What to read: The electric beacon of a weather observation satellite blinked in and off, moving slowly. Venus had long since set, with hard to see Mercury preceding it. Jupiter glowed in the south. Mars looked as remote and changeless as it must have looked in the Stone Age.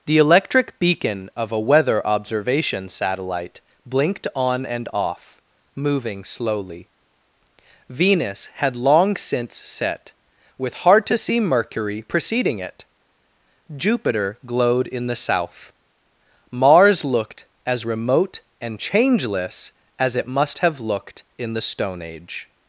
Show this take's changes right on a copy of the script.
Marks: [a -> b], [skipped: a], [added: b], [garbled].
The electric beacon of a weather observation satellite blinked [in -> on] and off, moving slowly. Venus had long since set, with hard to see Mercury preceding it. Jupiter glowed in the south. Mars looked as remote and changeless as it must have looked in the Stone Age.